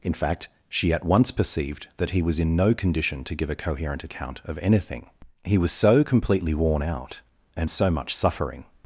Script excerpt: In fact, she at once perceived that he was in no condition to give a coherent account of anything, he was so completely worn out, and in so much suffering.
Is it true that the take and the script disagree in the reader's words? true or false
true